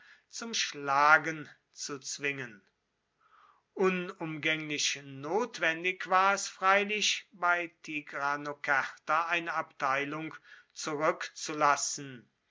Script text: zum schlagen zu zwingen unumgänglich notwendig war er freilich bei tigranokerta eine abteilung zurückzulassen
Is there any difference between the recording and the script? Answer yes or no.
yes